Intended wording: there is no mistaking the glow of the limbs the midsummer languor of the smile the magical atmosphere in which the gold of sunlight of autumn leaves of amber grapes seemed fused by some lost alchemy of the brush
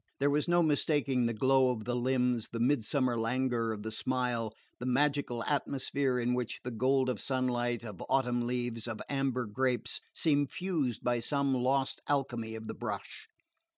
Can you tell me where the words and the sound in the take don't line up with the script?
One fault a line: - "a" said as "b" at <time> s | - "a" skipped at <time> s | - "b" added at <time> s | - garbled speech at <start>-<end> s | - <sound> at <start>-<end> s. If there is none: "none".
- "is" said as "was" at 0.3 s